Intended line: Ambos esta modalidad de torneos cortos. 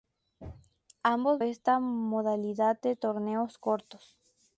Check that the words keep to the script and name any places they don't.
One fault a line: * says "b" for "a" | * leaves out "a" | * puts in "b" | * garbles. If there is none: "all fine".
all fine